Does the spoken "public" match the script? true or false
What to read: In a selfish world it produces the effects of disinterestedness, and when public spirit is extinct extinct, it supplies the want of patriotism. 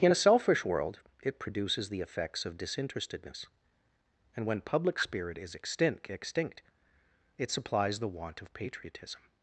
true